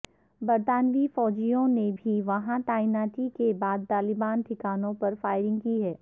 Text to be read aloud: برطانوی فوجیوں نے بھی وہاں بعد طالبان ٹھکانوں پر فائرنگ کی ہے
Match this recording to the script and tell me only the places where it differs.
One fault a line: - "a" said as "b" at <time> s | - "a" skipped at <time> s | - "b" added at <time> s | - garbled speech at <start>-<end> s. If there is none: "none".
- "تعیناتی کے" added at 2.7 s